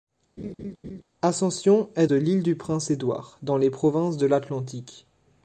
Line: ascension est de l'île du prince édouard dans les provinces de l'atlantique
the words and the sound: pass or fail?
fail